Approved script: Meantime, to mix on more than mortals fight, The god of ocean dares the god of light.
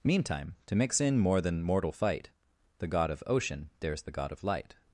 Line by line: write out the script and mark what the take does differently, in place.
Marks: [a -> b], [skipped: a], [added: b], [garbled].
Meantime, to mix [on -> in] more than [mortals -> mortal] fight, The god of ocean dares the god of light.